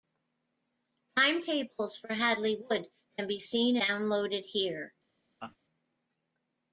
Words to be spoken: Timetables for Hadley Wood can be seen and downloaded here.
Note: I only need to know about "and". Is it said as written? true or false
false